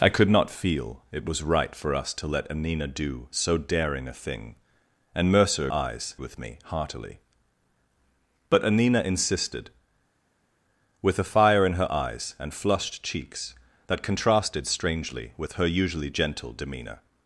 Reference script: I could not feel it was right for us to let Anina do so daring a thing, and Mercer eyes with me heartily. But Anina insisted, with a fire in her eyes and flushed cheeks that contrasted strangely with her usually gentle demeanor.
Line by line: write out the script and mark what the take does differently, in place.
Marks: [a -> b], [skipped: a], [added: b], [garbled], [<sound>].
I could not feel it was right for us to let Anina do so daring a thing, and Mercer eyes with me heartily. But Anina insisted, with a fire in her eyes and flushed cheeks that contrasted strangely with her usually gentle demeanor.